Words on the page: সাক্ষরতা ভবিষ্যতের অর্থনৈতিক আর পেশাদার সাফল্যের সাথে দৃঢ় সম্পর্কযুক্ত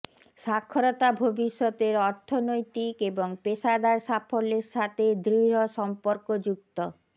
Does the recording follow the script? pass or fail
fail